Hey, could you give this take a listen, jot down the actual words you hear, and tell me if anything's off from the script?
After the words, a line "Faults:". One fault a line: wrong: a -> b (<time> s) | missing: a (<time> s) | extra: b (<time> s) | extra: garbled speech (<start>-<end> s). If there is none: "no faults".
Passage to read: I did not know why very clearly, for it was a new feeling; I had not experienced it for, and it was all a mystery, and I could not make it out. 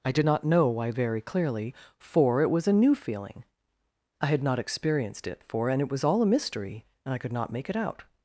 I did not know why very clearly, for it was a new feeling; I had not experienced it for, and it was all a mystery, and I could not make it out.
Faults:
no faults